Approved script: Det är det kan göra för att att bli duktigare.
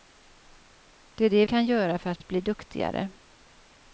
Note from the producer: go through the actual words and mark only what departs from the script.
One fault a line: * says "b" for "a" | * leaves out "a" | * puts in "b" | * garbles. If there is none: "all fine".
all fine